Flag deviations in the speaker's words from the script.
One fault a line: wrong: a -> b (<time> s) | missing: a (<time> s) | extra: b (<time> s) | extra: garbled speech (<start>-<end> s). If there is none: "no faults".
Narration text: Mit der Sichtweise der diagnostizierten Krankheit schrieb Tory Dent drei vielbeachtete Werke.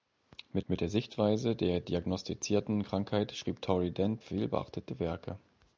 extra: mit (0.7 s)
missing: drei (4.2 s)